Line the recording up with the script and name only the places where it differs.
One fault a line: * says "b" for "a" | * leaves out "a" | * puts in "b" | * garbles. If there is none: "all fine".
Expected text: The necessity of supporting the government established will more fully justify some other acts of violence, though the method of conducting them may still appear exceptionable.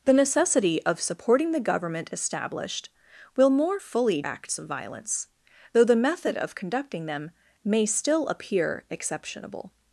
* leaves out "justify some other"